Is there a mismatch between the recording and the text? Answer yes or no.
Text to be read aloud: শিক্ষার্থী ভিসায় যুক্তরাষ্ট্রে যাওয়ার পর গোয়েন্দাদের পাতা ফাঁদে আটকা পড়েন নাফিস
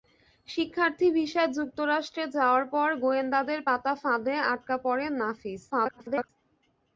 yes